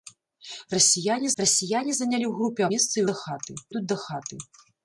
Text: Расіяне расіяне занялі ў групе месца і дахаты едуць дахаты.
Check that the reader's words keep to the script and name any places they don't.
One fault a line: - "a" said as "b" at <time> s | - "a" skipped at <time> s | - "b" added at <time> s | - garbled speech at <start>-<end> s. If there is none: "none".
none